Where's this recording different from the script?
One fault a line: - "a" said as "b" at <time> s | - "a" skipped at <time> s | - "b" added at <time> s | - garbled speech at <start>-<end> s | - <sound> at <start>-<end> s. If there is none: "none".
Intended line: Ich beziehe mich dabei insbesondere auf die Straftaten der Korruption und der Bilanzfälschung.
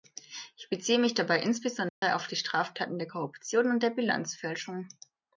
- dropout at 1.9-2.0 s